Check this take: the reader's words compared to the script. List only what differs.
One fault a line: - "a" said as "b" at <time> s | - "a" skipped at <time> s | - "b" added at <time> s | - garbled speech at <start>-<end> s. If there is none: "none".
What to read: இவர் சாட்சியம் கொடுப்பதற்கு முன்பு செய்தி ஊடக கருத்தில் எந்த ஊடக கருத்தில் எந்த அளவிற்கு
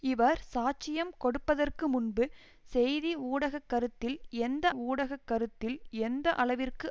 none